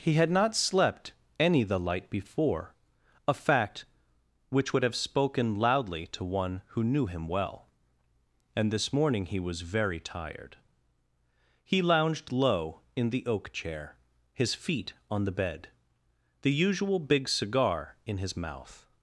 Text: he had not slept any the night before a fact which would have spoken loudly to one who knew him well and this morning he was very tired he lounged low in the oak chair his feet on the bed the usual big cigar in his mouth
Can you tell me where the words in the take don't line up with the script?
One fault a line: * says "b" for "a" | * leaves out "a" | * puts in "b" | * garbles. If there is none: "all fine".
* says "light" for "night"